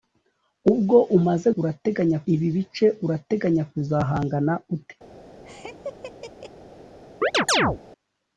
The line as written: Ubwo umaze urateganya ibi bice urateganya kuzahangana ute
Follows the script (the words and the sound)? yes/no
no